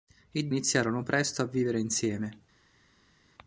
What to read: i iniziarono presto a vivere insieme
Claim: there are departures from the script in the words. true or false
false